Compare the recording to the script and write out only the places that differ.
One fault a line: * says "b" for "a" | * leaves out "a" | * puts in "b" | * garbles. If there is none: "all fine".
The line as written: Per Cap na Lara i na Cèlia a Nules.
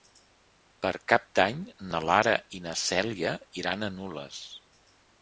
* puts in "d'Any"
* puts in "iran"